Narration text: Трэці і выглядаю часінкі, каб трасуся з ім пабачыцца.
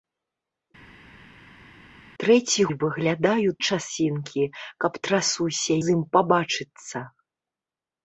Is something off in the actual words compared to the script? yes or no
no